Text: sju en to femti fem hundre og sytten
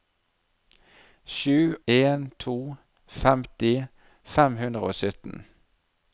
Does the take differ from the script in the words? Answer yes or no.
no